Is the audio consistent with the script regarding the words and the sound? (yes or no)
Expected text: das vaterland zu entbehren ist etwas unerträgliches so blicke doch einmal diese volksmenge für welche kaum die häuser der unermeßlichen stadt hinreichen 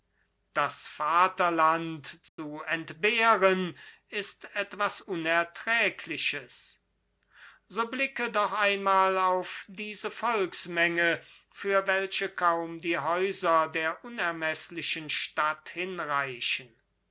no